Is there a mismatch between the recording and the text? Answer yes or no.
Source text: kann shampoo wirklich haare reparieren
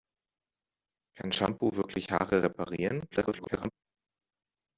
yes